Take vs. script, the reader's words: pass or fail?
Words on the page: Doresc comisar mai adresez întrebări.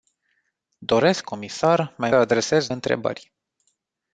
pass